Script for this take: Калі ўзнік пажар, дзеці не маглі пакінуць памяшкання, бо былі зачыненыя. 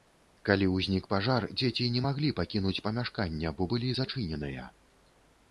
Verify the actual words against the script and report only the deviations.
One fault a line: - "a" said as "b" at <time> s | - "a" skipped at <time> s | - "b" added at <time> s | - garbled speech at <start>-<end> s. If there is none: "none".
none